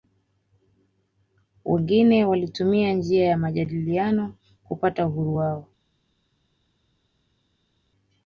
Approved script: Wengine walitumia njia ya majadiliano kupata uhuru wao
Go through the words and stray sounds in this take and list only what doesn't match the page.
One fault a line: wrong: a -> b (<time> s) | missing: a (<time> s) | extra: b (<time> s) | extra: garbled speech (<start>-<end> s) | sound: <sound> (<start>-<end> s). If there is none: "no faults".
no faults